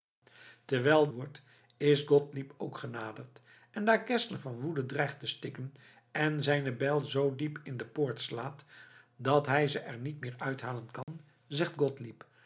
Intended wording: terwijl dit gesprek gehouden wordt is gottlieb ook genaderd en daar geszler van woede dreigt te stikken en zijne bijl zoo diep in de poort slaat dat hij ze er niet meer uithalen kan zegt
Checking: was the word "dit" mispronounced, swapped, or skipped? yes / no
yes